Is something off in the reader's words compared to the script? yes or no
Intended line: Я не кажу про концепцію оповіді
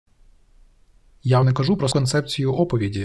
no